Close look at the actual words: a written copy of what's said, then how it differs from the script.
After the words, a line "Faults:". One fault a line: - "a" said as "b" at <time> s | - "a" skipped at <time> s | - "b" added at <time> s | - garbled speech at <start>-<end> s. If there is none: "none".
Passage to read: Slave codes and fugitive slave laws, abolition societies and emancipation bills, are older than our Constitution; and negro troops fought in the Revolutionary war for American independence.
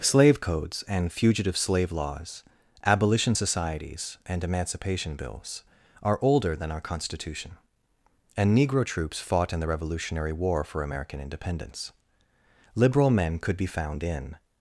Slave codes and fugitive slave laws, abolition societies and emancipation bills, are older than our Constitution; and negro troops fought in the Revolutionary war for American independence. Liberal men could be found in
Faults:
- "Liberal men could be found in" added at 12.7 s